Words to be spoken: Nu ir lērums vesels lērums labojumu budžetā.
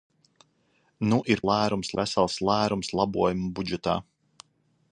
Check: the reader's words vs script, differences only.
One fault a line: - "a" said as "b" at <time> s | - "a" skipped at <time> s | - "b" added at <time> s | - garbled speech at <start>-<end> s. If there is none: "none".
none